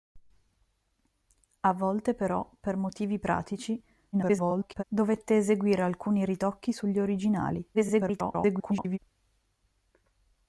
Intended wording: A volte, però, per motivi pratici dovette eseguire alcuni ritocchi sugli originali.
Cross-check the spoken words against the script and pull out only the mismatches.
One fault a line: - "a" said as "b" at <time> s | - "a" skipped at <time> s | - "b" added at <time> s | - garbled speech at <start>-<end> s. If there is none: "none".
- garbled speech at 4.1-4.8 s
- garbled speech at 7.7-9.0 s